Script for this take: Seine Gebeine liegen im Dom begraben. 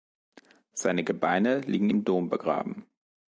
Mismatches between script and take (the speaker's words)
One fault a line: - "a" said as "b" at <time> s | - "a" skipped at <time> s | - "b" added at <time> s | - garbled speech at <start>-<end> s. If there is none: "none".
none